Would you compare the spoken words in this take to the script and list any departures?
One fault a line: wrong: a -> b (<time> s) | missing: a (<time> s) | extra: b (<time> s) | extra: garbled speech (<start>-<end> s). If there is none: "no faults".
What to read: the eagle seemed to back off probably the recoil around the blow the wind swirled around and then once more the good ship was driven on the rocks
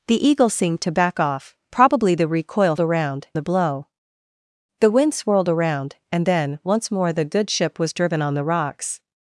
no faults